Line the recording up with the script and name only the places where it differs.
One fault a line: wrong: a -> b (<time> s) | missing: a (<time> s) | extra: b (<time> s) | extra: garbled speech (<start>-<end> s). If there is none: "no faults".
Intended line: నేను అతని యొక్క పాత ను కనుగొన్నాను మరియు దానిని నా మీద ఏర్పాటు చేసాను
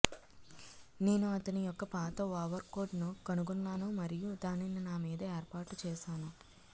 extra: ఓవర్కోట్ (2.4 s)